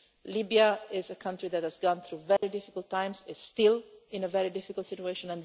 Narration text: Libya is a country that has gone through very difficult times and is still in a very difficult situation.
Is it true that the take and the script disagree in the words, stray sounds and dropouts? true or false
true